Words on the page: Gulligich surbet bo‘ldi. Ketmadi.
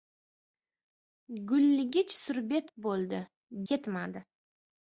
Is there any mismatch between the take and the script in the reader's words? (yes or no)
no